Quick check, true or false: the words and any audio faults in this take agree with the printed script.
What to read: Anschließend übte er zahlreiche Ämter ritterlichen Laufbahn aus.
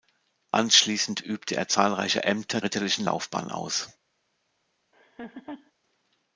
false